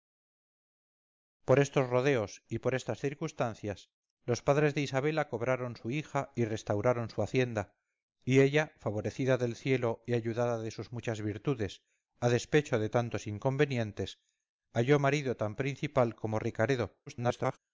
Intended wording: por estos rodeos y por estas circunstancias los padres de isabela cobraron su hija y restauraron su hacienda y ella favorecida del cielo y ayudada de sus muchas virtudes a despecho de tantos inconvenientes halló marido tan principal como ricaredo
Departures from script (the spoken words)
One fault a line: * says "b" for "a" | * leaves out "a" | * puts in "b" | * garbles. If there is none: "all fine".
* garbles